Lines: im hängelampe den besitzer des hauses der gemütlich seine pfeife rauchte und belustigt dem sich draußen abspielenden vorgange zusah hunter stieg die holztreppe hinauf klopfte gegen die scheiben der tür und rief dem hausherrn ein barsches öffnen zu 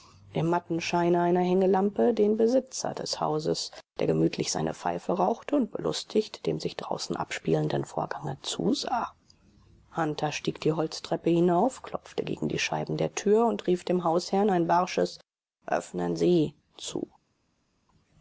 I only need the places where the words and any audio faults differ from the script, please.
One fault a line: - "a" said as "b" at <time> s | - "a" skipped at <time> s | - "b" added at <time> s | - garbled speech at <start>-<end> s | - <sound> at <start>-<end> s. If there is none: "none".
- "matten scheine einer" added at 0.5 s
- "sie" added at 16.1 s